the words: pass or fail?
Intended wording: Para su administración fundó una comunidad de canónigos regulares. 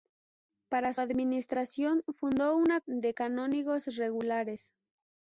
fail